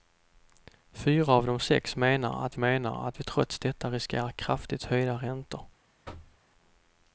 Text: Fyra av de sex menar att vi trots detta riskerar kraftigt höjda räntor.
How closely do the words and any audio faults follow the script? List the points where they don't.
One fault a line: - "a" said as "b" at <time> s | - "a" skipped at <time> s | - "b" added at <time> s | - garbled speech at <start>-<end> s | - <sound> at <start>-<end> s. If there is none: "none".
- "menar att" added at 2.6 s
- thud at 6.0-6.4 s